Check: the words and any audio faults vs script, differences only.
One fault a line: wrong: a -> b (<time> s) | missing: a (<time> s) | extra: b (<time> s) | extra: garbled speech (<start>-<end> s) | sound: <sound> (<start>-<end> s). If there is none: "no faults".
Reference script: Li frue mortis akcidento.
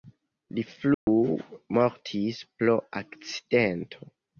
sound: dropout (0.9-1.1 s)
extra: pro (2.6 s)